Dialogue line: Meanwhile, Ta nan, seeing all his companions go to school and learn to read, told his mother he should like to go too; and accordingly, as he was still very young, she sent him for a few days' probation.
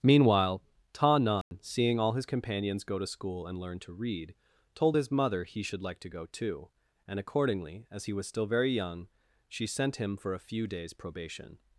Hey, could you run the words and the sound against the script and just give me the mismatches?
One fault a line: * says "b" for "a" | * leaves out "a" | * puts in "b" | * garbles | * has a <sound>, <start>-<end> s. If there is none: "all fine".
* has a dropout, 1.4-1.5 s